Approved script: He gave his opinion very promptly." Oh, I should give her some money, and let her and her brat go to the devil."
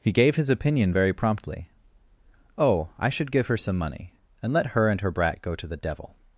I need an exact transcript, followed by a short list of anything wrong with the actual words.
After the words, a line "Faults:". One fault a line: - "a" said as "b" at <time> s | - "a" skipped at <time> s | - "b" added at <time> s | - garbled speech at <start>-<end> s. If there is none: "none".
He gave his opinion very promptly." Oh, I should give her some money, and let her and her brat go to the devil."
Faults:
none